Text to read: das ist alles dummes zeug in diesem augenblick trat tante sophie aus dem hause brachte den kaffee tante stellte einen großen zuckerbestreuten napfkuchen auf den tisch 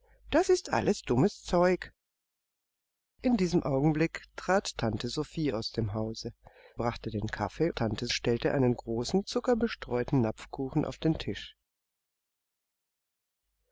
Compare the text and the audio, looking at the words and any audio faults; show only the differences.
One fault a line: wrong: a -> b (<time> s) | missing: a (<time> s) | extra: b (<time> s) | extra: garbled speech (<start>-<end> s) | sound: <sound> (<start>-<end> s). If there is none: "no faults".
no faults